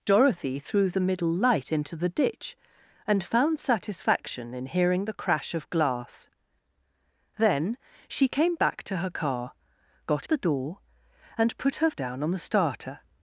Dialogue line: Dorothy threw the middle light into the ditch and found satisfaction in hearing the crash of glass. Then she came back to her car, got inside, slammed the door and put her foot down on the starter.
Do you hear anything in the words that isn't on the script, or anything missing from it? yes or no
yes